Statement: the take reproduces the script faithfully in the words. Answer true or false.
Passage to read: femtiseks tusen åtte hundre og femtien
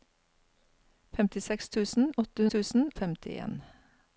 false